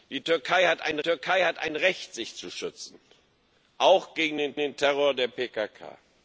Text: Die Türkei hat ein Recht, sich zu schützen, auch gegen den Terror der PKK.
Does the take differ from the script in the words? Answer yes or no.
yes